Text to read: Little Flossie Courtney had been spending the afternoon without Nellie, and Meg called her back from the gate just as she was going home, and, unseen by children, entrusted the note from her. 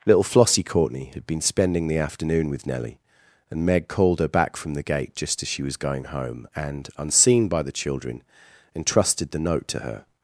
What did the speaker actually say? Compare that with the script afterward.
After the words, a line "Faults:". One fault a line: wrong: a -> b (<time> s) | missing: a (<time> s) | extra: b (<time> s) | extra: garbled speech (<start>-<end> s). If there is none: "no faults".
Little Flossie Courtney had been spending the afternoon with Nellie, and Meg called her back from the gate just as she was going home, and, unseen by the children, entrusted the note to her.
Faults:
wrong: without -> with (2.5 s)
extra: the (7.6 s)
wrong: from -> to (9.7 s)